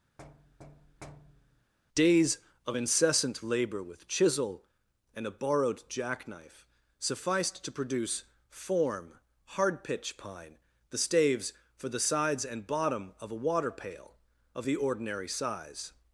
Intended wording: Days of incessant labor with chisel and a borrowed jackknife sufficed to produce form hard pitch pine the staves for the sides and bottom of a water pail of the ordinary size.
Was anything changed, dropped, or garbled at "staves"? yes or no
no